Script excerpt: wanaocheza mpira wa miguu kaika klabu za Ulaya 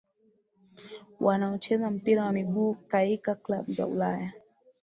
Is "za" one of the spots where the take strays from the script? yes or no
no